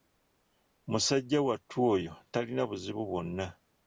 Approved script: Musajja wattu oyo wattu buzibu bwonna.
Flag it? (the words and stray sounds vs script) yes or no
yes